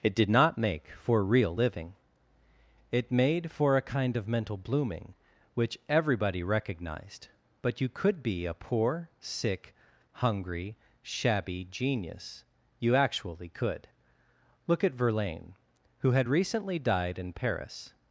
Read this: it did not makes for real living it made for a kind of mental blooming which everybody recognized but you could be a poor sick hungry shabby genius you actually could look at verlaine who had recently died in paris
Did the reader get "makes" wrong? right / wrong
wrong